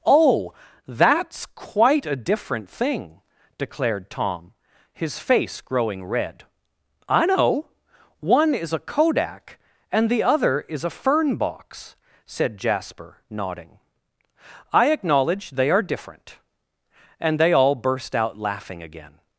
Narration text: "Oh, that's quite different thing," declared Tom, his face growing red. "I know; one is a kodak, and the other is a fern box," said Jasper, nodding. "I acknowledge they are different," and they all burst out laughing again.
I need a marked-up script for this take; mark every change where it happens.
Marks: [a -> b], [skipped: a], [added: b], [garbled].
"Oh, that's quite [added: a] different thing," declared Tom, his face growing red. "I know; one is a kodak, and the other is a fern box," said Jasper, nodding. "I acknowledge they are different," and they all burst out laughing again.